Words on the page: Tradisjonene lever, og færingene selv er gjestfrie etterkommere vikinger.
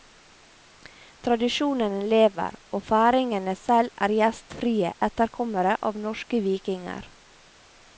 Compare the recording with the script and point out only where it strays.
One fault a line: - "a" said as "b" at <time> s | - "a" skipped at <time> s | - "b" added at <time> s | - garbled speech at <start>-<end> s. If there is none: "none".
- "av norske" added at 5.9 s